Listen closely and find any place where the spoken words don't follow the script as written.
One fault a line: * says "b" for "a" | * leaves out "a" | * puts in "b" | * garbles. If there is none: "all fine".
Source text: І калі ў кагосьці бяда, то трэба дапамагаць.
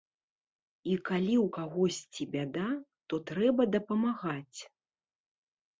all fine